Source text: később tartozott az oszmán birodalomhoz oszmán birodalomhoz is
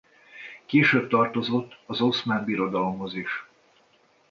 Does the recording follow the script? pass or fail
fail